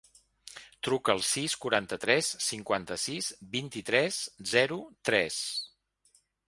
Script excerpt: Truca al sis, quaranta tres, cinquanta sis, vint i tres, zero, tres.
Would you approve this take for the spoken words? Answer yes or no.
yes